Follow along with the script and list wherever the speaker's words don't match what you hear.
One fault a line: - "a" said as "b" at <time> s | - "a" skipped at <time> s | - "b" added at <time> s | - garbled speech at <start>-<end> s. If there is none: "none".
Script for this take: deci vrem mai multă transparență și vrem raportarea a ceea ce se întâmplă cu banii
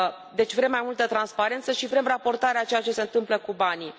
none